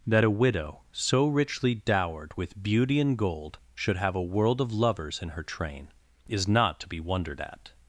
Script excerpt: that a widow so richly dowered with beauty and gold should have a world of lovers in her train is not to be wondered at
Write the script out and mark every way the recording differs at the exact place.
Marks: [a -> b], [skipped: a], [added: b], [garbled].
that a widow so richly dowered with beauty and gold should have a world of lovers in her train is not to be wondered at